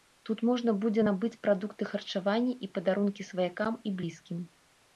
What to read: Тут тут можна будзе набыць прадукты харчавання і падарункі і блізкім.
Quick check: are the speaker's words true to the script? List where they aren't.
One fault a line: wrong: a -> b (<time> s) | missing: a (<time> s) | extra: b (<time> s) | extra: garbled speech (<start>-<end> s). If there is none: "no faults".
missing: тут (0.4 s)
extra: сваякам (3.3 s)